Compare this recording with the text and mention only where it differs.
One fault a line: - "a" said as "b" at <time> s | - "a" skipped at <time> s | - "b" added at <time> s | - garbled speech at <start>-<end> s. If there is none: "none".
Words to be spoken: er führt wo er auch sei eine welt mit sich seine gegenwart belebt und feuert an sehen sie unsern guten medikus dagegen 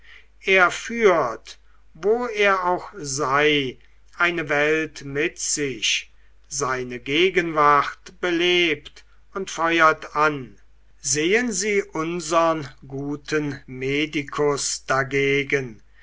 none